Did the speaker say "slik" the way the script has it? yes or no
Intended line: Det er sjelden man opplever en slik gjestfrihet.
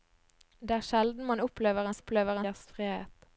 no